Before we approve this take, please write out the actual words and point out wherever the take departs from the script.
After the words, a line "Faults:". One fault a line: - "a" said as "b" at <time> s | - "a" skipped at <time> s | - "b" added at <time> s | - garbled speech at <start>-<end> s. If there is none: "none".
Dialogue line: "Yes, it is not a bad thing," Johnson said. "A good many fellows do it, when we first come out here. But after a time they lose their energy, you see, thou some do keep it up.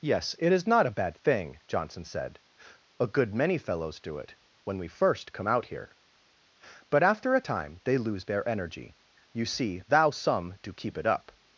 "Yes, it is not a bad thing," Johnson said. "A good many fellows do it, when we first come out here. But after a time they lose their energy, you see, thou some do keep it up.
Faults:
none